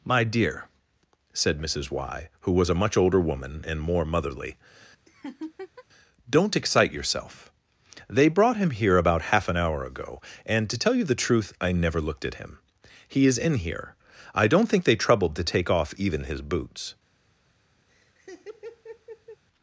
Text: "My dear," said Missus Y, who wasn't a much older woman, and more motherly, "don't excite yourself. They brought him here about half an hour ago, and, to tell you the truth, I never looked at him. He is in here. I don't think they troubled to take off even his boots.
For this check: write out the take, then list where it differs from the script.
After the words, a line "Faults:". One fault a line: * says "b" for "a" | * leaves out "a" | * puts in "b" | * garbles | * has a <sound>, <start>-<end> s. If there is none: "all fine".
"My dear," said Missus Y, who was a much older woman, and more motherly, "don't excite yourself. They brought him here about half an hour ago, and, to tell you the truth, I never looked at him. He is in here. I don't think they troubled to take off even his boots.
Faults:
* says "was" for "wasn't"
* has a laugh, 5.1-5.8 s
* has a laugh, 17.9-19.4 s